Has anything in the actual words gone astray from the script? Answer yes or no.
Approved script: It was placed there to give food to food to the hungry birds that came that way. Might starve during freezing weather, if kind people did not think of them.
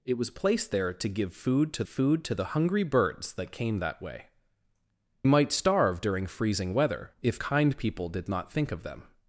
no